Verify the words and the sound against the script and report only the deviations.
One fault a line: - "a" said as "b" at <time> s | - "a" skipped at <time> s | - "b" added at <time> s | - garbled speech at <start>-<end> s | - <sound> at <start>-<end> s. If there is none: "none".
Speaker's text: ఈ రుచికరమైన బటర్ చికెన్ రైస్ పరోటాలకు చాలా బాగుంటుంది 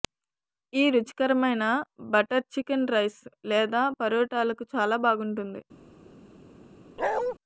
- "లేదా" added at 3.5 s
- bark at 7.0-7.3 s